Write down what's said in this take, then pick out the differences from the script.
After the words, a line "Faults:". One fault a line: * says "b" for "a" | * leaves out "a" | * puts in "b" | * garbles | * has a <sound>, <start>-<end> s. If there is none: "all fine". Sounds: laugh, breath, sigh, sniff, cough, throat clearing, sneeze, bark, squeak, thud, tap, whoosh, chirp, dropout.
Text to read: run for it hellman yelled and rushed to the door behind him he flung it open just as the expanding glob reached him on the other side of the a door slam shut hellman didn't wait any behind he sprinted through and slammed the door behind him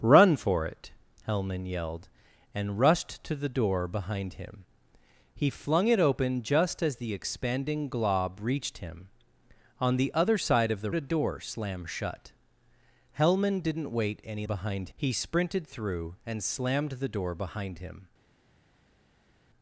run for it hellman yelled and rushed to the door behind him he flung it open just as the expanding glob reached him on the other side of the a door slam shut hellman didn't wait any behind he sprinted through and slammed the door behind him
Faults:
all fine